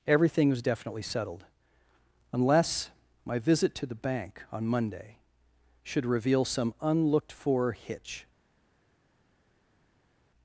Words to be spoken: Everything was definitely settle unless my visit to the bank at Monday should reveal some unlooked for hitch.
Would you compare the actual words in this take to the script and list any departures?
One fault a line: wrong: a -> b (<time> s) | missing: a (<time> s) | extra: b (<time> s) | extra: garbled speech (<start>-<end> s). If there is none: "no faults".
wrong: settle -> settled (1.0 s)
wrong: at -> on (4.5 s)